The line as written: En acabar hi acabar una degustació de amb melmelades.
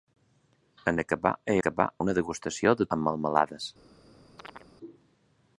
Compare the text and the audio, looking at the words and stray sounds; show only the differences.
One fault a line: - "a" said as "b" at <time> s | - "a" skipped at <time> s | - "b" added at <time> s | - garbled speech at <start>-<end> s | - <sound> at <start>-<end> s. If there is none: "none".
- chirp at 4.4-4.7 s